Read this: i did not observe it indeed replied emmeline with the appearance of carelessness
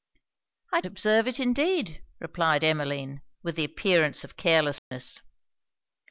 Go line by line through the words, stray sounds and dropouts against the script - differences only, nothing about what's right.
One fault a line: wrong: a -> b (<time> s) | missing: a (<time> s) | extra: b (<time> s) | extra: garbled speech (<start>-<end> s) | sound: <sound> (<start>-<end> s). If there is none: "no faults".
missing: did not (0.8 s)
sound: dropout (4.8-4.9 s)